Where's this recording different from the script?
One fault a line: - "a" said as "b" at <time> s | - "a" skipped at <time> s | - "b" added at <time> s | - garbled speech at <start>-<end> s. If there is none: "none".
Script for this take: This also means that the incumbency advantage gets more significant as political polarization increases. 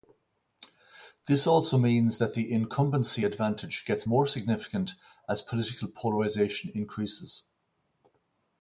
none